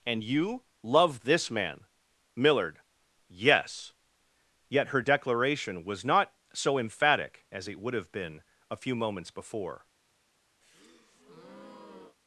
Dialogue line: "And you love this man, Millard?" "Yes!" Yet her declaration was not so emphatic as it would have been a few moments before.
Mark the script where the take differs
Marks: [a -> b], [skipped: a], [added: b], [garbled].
"And you love this man, Millard?" "Yes!" Yet her declaration was not so emphatic as it would have been a few moments before.